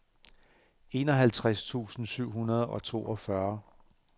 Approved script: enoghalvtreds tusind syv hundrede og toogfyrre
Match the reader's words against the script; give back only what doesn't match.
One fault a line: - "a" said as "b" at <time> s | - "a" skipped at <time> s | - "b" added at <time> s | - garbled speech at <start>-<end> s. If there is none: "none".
none